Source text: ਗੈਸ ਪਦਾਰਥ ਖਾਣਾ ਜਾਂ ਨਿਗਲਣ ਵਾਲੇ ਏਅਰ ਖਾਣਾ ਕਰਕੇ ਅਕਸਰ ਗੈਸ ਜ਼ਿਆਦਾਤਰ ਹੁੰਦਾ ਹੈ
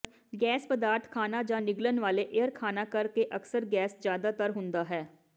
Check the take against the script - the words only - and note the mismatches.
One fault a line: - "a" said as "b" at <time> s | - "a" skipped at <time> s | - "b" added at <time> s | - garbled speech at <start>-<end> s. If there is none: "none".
none